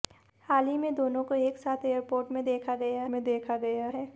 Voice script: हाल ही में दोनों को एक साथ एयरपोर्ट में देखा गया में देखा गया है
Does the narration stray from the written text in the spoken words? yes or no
no